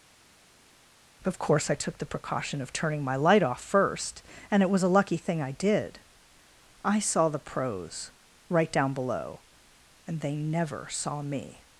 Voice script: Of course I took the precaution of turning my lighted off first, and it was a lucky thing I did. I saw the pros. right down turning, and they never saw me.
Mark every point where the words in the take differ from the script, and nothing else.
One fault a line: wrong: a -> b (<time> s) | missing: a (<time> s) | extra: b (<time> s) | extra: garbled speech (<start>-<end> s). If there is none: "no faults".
wrong: lighted -> light (3.1 s)
wrong: turning -> below (8.9 s)